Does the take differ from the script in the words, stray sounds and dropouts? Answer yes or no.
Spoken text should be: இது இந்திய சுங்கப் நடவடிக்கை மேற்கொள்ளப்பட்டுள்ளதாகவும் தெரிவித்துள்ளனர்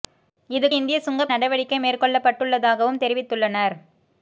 no